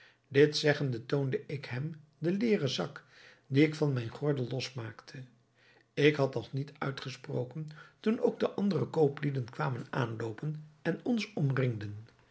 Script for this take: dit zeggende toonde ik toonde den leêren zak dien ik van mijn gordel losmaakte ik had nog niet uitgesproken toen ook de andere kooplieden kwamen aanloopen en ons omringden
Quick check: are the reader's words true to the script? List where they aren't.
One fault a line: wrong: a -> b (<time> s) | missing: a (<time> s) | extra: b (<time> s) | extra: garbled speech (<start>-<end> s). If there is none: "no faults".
wrong: toonde -> hem (1.6 s)